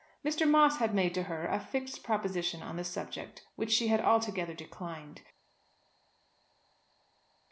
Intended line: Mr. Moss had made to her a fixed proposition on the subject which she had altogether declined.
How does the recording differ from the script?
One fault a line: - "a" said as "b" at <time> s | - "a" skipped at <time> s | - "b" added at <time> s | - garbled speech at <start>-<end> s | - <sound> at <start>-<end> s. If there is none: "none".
none